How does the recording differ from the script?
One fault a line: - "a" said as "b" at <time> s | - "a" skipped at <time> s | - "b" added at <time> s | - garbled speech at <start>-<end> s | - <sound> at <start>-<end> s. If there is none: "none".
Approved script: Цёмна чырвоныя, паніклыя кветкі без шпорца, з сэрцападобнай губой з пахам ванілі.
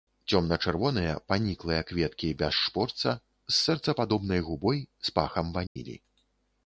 - dropout at 5.7-5.8 s